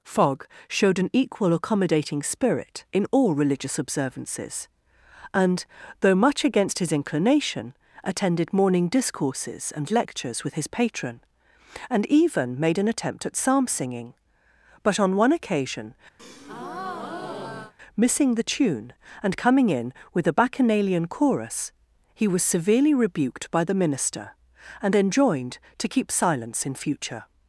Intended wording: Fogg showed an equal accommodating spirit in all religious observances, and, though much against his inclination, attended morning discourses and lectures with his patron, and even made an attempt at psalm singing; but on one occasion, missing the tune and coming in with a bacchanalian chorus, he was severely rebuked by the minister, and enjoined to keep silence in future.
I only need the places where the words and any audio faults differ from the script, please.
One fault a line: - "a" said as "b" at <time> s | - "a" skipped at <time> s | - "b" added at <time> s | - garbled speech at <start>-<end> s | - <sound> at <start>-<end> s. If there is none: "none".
- breath at 16.2-17.7 s